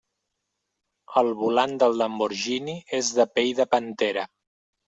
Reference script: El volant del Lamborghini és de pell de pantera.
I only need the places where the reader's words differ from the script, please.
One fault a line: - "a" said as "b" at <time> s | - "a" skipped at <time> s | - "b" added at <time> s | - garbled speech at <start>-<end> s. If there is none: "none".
none